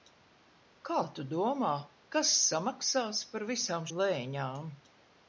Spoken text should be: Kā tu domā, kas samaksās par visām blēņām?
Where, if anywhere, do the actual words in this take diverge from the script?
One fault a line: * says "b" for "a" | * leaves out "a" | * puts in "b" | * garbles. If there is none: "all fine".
all fine